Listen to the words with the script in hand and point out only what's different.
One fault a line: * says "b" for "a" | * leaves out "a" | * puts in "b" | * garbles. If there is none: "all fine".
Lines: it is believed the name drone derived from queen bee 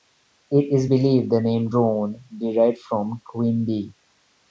all fine